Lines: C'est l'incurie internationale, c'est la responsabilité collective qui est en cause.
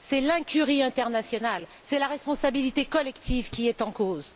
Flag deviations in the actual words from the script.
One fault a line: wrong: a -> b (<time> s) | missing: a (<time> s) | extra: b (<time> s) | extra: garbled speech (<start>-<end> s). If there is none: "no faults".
no faults